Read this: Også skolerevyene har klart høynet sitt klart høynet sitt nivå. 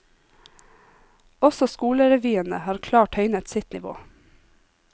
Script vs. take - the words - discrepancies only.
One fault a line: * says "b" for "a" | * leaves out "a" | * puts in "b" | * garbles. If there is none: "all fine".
* leaves out "klart høynet sitt"